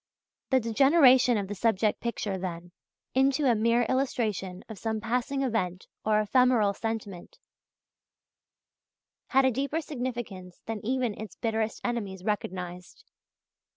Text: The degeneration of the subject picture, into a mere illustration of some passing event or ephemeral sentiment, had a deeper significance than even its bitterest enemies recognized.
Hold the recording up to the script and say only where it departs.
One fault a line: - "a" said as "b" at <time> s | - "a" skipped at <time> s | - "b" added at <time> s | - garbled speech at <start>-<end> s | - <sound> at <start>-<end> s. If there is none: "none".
- "then" added at 2.4 s